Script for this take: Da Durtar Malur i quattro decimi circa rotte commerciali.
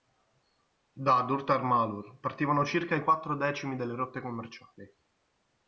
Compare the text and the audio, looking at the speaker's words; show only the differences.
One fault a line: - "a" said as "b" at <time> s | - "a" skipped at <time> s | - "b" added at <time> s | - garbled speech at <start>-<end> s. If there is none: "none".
- "partivano circa" added at 2.2 s
- "circa" said as "delle" at 3.8 s